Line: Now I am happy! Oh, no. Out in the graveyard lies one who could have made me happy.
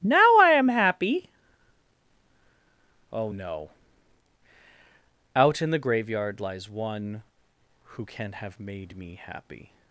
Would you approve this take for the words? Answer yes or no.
no